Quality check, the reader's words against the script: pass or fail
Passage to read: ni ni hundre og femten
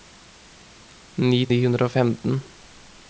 pass